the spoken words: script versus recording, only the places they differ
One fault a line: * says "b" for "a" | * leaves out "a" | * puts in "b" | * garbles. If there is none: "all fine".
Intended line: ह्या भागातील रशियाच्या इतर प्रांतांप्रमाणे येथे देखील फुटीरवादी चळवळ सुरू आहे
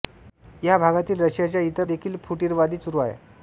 * leaves out "प्रांतांप्रमाणे येथे"
* leaves out "चळवळ"